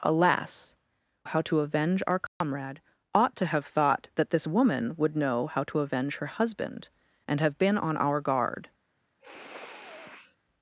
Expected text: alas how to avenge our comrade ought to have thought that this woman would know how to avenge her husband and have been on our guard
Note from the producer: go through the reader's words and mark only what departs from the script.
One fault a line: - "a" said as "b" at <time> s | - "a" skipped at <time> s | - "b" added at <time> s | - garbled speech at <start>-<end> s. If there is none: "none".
none